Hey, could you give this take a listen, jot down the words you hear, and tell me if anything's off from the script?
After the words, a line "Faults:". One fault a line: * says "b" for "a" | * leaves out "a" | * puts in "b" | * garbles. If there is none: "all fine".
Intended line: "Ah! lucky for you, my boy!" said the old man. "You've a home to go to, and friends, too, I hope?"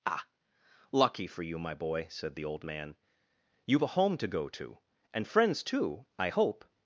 "Ah! lucky for you, my boy!" said the old man. "You've a home to go to, and friends, too, I hope?"
Faults:
all fine